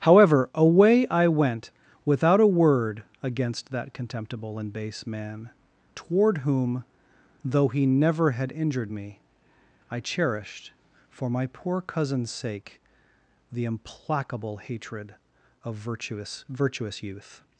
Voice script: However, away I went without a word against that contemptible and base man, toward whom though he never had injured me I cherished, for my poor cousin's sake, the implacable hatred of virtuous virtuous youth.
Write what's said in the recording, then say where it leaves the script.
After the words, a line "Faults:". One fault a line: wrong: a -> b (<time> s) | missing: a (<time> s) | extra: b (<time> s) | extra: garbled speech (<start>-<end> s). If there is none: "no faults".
However, away I went without a word against that contemptible and base man, toward whom though he never had injured me I cherished, for my poor cousin's sake, the implacable hatred of virtuous virtuous youth.
Faults:
no faults